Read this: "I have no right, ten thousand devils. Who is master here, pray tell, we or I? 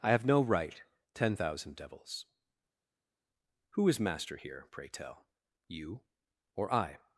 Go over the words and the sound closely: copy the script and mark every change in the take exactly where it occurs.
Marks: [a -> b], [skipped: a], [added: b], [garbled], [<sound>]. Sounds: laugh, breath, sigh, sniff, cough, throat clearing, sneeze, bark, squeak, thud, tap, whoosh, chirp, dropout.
"I have no right, ten thousand devils. Who is master here, pray tell, [we -> you] or I?